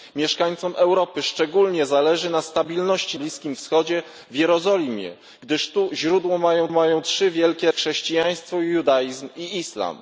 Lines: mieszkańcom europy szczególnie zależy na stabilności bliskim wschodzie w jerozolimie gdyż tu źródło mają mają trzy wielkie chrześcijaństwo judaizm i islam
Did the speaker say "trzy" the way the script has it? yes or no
yes